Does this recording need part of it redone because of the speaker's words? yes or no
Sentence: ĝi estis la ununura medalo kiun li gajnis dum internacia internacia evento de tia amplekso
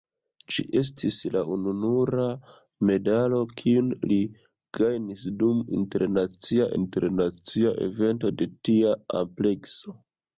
no